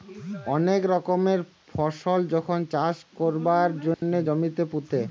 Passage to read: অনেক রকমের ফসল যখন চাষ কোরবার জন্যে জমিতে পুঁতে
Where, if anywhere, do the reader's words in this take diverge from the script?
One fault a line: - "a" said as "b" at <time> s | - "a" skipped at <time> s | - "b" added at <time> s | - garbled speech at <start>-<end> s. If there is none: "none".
none